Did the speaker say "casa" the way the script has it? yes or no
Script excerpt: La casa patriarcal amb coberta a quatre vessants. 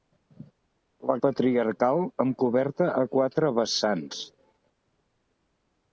no